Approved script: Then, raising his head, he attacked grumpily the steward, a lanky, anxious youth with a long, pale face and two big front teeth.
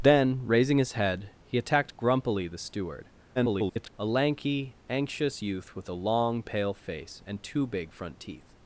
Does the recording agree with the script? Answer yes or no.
no